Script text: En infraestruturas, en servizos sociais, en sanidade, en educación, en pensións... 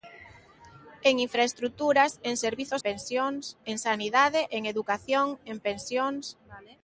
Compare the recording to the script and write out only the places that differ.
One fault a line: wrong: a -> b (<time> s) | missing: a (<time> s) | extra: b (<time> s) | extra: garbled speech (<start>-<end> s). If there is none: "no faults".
wrong: sociais -> pensións (2.8 s)